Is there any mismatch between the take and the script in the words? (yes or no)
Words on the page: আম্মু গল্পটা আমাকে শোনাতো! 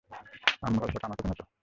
no